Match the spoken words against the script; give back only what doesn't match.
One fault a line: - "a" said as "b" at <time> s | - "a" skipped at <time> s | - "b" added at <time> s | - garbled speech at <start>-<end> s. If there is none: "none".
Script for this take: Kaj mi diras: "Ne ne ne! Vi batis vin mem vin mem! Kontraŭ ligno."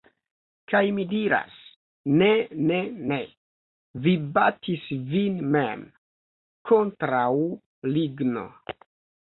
- "vin mem" skipped at 5.9 s